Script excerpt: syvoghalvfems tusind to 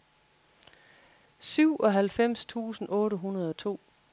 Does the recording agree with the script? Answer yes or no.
no